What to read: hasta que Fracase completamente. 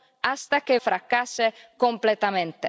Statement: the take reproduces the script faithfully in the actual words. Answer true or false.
true